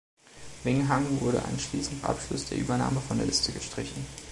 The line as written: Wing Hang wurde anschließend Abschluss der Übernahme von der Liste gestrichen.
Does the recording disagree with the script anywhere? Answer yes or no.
no